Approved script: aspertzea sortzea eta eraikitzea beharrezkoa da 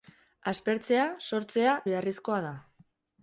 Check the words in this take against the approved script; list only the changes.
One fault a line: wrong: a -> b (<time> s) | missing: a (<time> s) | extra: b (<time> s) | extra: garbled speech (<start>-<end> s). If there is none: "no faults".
missing: eta eraikitzea (1.8 s)